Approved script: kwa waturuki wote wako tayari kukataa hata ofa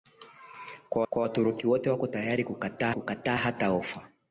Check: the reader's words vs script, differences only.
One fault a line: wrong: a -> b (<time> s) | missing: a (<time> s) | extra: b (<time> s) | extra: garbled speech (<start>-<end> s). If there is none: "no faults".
extra: kwa (1.1 s)
extra: kukataa (2.9 s)